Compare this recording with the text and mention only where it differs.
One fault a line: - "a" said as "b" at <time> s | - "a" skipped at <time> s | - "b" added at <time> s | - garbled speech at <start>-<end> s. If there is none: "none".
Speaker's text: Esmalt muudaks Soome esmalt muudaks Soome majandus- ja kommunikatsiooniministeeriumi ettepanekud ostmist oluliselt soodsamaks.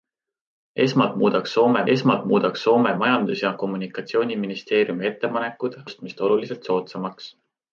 none